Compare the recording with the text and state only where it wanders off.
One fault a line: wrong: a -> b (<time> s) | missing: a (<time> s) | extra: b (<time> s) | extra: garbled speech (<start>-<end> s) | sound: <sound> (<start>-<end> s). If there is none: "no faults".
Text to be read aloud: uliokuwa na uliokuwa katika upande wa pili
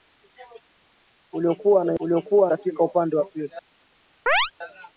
sound: chirp (4.3-4.5 s)